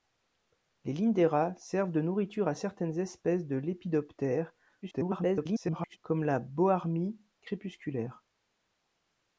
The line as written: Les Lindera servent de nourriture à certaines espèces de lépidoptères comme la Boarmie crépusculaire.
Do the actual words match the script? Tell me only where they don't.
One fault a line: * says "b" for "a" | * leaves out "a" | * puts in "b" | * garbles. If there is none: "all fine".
* garbles